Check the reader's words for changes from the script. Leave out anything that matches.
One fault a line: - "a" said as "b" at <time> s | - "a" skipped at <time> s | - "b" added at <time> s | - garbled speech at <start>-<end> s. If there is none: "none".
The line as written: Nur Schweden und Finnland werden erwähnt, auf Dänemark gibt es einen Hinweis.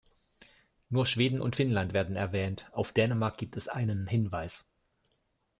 none